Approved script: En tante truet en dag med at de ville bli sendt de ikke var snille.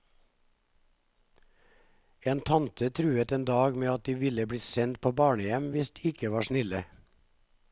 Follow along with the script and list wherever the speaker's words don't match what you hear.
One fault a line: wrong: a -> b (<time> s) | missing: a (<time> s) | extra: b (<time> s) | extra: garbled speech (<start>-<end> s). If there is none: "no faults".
extra: på barnehjem hvis (5.0 s)